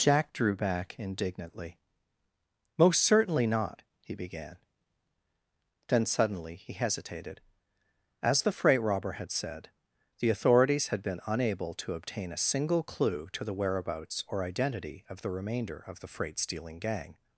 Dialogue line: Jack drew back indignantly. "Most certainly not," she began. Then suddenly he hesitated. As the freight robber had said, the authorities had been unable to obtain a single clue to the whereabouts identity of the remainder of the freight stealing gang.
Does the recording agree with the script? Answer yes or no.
no